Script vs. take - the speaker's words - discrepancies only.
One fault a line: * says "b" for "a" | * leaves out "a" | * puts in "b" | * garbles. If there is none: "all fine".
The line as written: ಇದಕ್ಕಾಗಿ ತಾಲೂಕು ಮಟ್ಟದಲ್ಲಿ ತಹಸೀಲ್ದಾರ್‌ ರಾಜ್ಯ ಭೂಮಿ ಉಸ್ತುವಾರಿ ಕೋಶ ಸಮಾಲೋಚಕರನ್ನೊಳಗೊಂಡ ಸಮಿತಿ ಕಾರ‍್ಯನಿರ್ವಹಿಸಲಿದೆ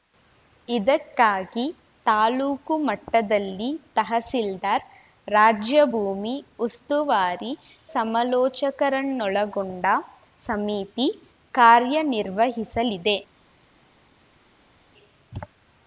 * leaves out "ಕೋಶ"